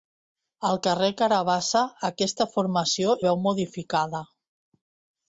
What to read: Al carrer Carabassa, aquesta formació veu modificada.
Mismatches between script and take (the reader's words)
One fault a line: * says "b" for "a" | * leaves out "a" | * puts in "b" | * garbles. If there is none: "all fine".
all fine